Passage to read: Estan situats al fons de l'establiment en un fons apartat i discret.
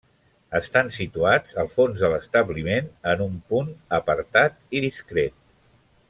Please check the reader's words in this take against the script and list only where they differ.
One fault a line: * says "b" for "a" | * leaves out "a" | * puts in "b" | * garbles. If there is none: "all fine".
* says "punt" for "fons"